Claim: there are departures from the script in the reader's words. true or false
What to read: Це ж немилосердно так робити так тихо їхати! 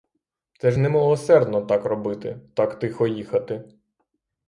false